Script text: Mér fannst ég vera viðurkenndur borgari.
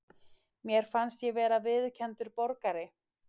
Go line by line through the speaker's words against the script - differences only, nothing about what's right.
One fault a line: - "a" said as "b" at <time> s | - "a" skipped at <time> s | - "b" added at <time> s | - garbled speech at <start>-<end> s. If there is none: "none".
none